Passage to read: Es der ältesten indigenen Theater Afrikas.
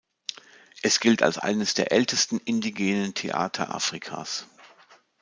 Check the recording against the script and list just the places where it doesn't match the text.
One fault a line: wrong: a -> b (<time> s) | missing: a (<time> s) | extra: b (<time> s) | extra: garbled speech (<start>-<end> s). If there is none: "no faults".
extra: gilt als eines (1.0 s)